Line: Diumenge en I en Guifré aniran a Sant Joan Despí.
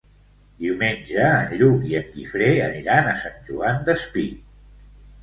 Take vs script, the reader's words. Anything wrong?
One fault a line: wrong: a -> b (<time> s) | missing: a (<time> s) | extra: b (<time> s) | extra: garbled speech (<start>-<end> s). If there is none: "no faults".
extra: Lluc (1.6 s)